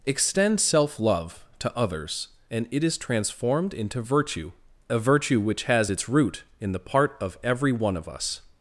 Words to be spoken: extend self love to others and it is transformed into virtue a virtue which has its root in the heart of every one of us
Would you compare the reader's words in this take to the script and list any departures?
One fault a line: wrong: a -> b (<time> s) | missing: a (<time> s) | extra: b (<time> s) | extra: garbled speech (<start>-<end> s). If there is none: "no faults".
wrong: heart -> part (6.8 s)